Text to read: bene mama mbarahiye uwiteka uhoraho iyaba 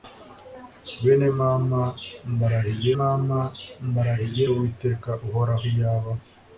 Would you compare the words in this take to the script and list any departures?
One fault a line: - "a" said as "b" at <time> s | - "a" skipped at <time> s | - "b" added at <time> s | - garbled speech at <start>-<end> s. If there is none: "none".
- "mama mbarahiye" added at 3.0 s